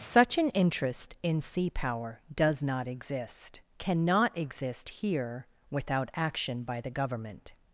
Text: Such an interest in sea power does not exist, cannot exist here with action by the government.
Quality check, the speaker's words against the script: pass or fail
fail